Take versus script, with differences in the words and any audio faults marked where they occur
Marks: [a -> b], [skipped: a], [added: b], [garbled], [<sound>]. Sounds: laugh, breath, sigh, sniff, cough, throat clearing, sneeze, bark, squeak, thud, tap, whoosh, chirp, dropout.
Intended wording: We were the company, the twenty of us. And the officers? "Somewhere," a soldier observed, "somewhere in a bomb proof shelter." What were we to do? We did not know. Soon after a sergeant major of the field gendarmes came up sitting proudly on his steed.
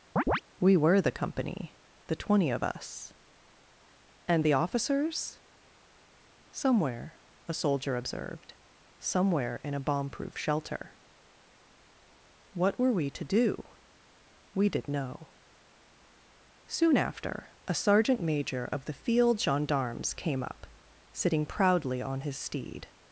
[chirp] We were the company, the twenty of us. And the officers? "Somewhere," a soldier observed, "somewhere in a bomb proof shelter." What were we to do? We did [skipped: not] know. Soon after a sergeant major of the field gendarmes came up sitting proudly on his steed.